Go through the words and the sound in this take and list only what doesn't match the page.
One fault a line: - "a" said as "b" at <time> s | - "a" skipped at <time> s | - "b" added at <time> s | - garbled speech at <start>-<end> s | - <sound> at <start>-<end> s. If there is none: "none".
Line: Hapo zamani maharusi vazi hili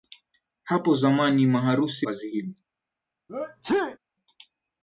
- sneeze at 3.3-4.0 s